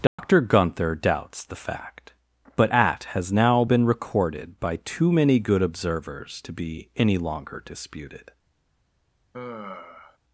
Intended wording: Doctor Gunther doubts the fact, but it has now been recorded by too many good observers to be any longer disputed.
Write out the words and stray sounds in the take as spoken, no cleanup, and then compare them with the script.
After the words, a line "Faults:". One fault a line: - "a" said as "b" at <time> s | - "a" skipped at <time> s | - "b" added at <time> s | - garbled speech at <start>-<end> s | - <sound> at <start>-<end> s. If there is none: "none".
Doctor Gunther doubts the fact, but at has now been recorded by too many good observers to be any longer disputed.
Faults:
- dropout at 0.1-0.2 s
- "it" said as "at" at 2.7 s
- sigh at 9.3-10.2 s